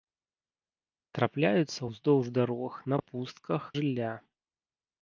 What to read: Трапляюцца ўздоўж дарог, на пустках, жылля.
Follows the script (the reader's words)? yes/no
yes